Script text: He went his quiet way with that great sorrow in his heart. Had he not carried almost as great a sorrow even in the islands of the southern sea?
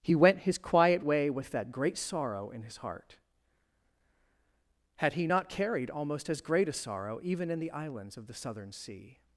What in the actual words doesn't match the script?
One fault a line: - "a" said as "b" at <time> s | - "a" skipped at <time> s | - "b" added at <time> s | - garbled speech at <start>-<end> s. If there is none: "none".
none